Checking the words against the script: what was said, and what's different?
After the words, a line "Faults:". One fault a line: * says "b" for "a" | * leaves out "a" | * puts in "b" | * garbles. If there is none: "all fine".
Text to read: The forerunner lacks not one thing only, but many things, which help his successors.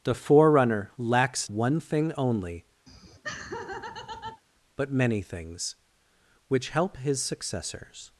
The forerunner lacks one thing only, but many things, which help his successors.
Faults:
* leaves out "not"